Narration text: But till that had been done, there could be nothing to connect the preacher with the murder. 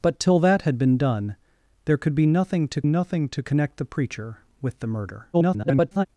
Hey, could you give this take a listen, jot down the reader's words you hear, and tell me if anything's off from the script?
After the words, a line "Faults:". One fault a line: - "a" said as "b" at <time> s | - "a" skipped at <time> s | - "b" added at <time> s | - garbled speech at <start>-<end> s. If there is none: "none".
But till that had been done, there could be nothing to nothing to connect the preacher with the murder. [garbled]
Faults:
- "nothing to" added at 2.8 s
- garbled speech at 5.3-6.1 s